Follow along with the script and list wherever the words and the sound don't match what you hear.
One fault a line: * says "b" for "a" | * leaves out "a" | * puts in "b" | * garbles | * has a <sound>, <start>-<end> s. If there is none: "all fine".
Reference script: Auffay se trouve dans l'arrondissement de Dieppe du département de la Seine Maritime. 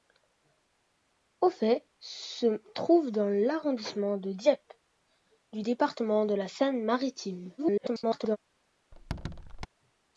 * garbles
* has a squeak, 8.9-9.7 s